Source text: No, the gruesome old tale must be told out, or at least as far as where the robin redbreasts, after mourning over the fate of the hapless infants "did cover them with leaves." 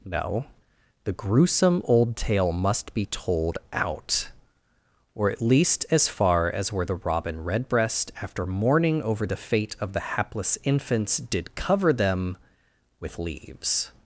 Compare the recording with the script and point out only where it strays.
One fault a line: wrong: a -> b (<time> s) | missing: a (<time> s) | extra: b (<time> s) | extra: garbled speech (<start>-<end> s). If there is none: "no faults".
wrong: redbreasts -> redbreast (7.4 s)